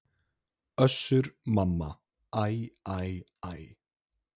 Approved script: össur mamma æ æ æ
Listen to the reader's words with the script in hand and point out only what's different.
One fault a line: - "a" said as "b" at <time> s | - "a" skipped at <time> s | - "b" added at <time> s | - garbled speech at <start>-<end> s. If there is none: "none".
none